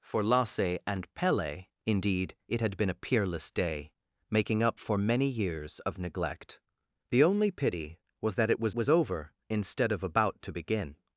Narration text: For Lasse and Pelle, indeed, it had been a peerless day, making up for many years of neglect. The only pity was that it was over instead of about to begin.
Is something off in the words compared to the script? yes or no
yes